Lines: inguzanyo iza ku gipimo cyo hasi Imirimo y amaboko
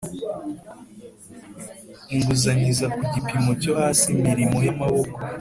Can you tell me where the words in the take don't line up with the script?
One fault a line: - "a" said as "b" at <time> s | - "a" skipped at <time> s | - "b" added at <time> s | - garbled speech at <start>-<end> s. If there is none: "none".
none